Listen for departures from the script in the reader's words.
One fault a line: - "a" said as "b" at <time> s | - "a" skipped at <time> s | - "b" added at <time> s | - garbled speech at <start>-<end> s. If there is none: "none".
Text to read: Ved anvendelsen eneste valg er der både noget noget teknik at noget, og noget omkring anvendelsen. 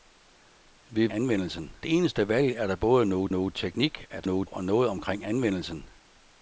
none